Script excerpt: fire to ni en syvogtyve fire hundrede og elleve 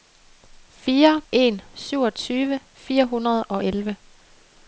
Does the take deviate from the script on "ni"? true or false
true